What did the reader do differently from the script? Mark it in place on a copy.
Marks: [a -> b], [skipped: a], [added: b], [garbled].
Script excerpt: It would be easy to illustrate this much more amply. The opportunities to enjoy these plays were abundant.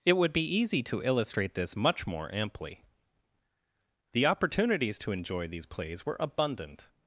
It would be easy to illustrate this much more amply. The opportunities to enjoy these plays were abundant.